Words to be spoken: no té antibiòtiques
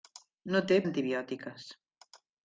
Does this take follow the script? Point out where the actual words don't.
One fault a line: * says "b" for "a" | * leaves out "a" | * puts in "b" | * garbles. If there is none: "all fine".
all fine